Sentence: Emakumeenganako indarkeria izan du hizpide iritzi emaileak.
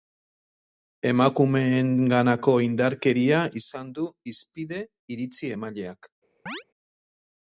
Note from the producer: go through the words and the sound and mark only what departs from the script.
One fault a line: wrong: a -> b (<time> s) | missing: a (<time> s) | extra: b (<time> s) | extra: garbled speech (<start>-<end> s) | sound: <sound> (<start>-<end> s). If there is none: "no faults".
sound: chirp (6.5-6.6 s)